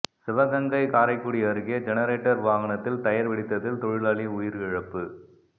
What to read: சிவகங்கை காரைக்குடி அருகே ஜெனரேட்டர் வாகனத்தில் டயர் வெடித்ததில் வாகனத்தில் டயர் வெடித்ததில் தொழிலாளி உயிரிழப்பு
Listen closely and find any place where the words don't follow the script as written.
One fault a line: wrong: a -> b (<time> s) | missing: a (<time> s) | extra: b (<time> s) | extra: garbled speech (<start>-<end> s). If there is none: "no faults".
missing: வாகனத்தில் டயர் வெடித்ததில் (3.8 s)